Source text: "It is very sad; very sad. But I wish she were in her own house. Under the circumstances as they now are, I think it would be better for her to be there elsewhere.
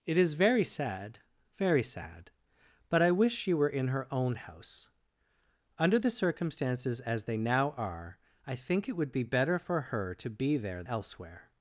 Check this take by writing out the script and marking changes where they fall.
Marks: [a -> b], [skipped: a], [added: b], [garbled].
"It is very sad; very sad. But I wish she were in her own house. Under the circumstances as they now are, I think it would be better for her to be there elsewhere.